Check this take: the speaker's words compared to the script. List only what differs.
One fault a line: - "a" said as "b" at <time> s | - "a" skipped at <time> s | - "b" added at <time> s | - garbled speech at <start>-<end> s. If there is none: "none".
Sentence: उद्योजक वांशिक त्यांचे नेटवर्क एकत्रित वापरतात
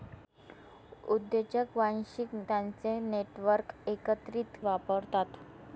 none